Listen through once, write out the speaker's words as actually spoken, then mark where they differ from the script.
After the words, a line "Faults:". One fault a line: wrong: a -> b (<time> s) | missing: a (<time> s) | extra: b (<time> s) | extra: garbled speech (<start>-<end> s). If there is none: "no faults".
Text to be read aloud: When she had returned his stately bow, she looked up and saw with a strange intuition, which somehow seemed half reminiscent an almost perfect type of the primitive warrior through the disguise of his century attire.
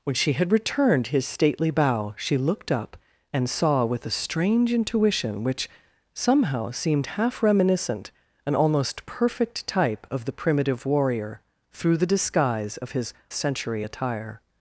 When she had returned his stately bow, she looked up and saw with a strange intuition, which somehow seemed half reminiscent an almost perfect type of the primitive warrior through the disguise of his century attire.
Faults:
no faults